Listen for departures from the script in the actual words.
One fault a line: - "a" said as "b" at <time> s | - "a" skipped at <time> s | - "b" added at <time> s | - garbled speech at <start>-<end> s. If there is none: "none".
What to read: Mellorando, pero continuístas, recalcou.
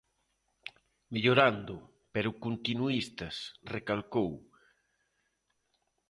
none